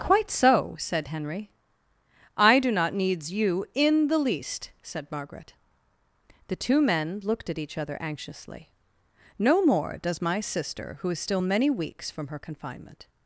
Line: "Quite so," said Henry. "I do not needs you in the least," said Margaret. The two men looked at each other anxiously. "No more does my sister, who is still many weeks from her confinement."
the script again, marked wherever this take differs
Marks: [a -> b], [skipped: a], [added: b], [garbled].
"Quite so," said Henry. "I do not needs you in the least," said Margaret. The two men looked at each other anxiously. "No more does my sister, who is still many weeks from her confinement."